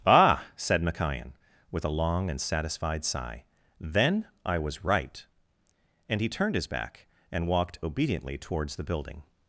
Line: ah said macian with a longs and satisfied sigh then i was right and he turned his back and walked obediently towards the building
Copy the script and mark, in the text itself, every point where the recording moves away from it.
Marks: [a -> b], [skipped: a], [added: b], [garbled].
ah said macian with a [longs -> long] and satisfied sigh then i was right and he turned his back and walked obediently towards the building